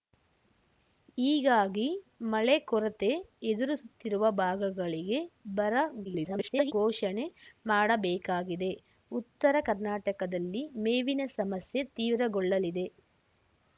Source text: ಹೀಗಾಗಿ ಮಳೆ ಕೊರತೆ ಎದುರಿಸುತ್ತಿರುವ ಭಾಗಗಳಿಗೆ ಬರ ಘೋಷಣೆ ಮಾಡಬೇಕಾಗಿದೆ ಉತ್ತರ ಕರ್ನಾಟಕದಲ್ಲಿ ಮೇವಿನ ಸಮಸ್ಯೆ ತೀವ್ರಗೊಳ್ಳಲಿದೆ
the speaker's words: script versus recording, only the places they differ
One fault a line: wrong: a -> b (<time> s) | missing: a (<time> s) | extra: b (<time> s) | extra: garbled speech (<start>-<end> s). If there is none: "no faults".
extra: garbled speech (6.0-6.7 s)